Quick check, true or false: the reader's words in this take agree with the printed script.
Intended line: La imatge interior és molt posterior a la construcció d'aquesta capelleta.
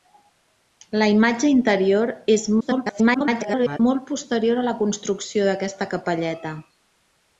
false